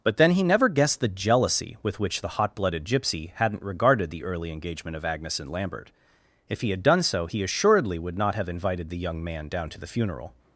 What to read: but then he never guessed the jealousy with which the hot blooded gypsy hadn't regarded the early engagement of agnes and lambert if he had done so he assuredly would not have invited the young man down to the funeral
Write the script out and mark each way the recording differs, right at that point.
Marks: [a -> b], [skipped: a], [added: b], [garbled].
but then he never guessed the jealousy with which the hot blooded gypsy hadn't regarded the early engagement of agnes and lambert if he had done so he assuredly would not have invited the young man down to the funeral